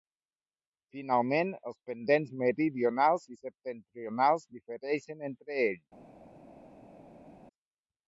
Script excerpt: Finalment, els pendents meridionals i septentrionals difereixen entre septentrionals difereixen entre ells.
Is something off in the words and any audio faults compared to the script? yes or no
yes